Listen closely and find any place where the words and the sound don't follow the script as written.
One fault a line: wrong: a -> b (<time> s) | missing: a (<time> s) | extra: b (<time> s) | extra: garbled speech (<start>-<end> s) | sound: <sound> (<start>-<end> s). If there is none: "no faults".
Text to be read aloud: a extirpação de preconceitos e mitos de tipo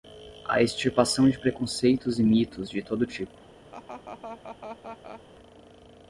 extra: todo (2.8 s)
sound: laugh (3.7-5.2 s)